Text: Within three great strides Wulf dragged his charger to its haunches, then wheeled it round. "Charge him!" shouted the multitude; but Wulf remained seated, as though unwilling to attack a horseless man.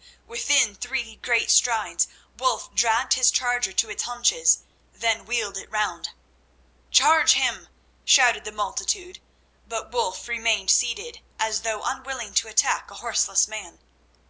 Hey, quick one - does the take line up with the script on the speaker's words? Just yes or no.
yes